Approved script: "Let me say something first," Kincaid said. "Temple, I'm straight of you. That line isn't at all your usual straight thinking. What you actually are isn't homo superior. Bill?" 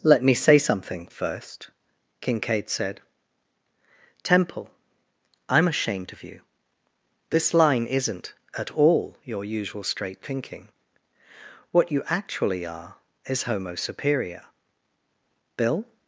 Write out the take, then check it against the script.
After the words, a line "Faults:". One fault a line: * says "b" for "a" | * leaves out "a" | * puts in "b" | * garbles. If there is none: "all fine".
"Let me say something first," Kincaid said. "Temple, I'm ashamed of you. This line isn't at all your usual straight thinking. What you actually are is homo superior. Bill?"
Faults:
* says "ashamed" for "straight"
* says "This" for "That"
* says "is" for "isn't"